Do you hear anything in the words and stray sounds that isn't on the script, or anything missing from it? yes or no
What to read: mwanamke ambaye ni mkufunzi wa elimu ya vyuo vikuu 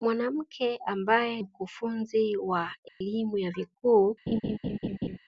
yes